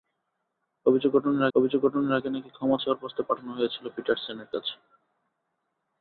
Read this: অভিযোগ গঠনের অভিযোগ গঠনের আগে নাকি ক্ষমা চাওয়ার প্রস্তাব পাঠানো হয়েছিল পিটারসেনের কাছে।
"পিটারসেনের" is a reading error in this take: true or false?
false